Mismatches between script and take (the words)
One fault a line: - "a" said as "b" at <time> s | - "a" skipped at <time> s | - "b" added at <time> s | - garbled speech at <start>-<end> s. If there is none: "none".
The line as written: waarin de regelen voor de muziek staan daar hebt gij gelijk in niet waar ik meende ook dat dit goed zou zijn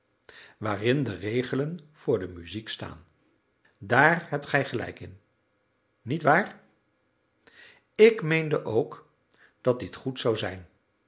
none